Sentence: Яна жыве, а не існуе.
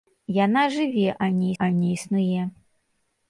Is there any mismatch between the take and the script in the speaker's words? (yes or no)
yes